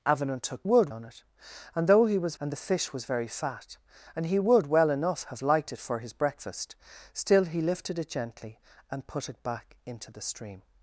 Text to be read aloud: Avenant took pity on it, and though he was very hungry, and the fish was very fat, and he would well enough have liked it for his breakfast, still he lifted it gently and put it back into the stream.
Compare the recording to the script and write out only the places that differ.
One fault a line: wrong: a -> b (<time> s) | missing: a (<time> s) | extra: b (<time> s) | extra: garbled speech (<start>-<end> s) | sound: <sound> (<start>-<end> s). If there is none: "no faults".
wrong: pity -> would (0.6 s)
missing: very hungry (2.4 s)